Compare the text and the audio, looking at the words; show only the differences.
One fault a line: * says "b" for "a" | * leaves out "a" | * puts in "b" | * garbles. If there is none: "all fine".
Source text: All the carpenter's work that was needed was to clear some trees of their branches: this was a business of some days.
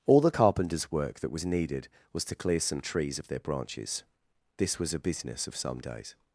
all fine